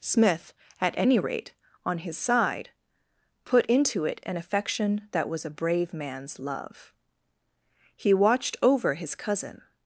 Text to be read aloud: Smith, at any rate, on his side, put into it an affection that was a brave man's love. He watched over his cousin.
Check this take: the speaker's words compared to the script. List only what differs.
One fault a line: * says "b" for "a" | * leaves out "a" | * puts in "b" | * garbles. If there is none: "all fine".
all fine